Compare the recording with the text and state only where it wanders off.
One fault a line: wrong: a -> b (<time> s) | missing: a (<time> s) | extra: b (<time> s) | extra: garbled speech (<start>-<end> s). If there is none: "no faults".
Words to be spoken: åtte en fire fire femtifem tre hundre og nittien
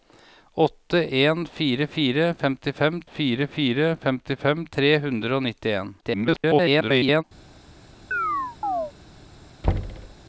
extra: fire fire femtifem (3.0 s)
extra: garbled speech (6.0-7.2 s)